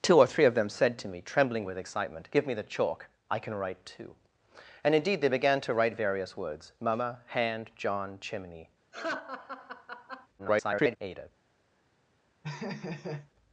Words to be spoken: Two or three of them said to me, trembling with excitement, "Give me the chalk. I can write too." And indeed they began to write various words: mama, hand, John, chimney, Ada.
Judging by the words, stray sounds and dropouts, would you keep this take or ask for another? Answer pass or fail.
fail